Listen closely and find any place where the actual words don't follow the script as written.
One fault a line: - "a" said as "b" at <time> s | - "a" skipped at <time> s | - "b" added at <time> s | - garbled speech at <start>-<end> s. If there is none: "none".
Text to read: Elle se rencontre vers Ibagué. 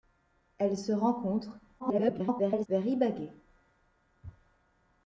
- garbled speech at 1.8-2.7 s